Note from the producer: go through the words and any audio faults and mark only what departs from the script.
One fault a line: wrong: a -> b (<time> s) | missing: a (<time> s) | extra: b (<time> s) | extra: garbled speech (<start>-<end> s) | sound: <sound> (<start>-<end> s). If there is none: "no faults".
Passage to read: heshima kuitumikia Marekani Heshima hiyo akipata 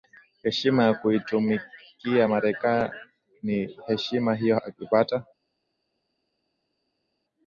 extra: ya (0.8 s)